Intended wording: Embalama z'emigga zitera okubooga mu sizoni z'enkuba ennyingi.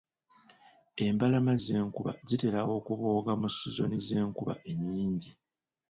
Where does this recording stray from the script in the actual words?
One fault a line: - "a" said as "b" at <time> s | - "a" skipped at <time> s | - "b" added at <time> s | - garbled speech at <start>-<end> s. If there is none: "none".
- "z'emigga" said as "z'enkuba" at 1.6 s